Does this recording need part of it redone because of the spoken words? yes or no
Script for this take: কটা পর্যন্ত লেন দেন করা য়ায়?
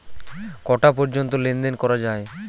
no